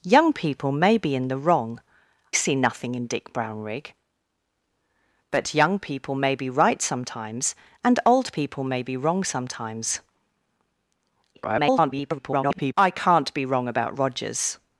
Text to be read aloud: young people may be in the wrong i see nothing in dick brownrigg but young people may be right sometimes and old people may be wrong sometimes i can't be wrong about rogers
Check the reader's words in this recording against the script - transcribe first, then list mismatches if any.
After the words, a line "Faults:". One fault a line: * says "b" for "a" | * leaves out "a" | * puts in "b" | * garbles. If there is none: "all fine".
young people may be in the wrong see nothing in dick brownrigg but young people may be right sometimes and old people may be wrong sometimes [garbled] i can't be wrong about rogers
Faults:
* leaves out "i"
* garbles